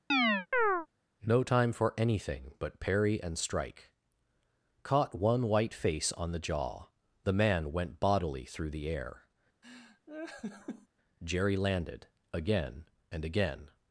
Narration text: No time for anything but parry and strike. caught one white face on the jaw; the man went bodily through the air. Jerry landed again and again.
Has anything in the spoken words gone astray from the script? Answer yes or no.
no